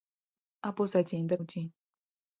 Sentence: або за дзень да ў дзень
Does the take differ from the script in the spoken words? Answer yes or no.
no